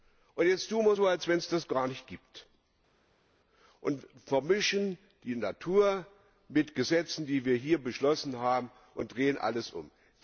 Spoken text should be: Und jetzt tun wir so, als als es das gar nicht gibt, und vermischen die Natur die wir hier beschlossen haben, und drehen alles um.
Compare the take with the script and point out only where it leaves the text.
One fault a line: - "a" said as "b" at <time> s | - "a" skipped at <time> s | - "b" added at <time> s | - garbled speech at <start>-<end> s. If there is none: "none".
- "als" said as "wenn" at 1.3 s
- "mit Gesetzen" added at 6.5 s